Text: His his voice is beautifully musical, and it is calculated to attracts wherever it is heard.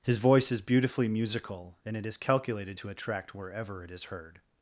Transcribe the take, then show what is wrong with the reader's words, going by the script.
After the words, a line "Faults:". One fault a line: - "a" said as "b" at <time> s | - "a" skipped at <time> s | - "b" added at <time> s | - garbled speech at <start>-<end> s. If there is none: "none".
His voice is beautifully musical, and it is calculated to attract wherever it is heard.
Faults:
- "his" skipped at 0.2 s
- "attracts" said as "attract" at 2.9 s